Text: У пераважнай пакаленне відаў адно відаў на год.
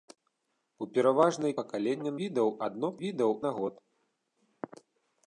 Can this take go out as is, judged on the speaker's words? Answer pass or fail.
pass